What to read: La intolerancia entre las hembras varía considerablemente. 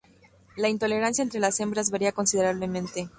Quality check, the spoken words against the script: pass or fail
pass